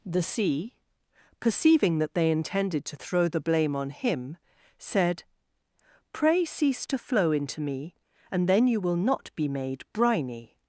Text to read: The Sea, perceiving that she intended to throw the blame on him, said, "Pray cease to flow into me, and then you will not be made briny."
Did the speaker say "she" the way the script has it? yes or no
no